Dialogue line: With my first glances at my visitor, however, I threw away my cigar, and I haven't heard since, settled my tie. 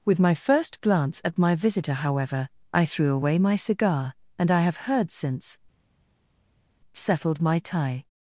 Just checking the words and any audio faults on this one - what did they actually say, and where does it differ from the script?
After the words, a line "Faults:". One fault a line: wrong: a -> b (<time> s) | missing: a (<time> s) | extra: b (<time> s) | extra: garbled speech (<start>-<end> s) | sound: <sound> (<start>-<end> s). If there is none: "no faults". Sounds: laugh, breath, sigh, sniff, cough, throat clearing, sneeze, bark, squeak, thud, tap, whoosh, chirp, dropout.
With my first glance at my visitor, however, I threw away my cigar, and I have heard since, settled my tie.
Faults:
wrong: glances -> glance (0.8 s)
wrong: haven't -> have (4.6 s)